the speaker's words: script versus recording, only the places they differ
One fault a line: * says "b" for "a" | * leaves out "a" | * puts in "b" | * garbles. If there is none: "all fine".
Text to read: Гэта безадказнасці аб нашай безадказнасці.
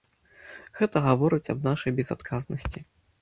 * says "гаворыць" for "безадказнасці"